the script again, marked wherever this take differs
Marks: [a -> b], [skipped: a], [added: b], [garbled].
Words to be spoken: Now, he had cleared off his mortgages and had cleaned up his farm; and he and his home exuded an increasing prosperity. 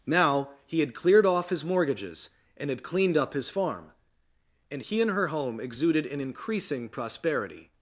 Now, he had cleared off his mortgages and had cleaned up his farm; and he and [his -> her] home exuded an increasing prosperity.